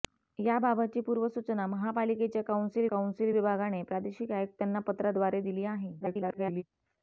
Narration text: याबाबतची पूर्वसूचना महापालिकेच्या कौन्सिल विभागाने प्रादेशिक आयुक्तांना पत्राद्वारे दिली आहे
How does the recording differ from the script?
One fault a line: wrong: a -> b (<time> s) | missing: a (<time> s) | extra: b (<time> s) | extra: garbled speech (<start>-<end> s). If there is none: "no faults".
extra: कौन्सिल (2.9 s)
extra: garbled speech (6.0-6.6 s)